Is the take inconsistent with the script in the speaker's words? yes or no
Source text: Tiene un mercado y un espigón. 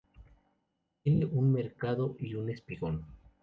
no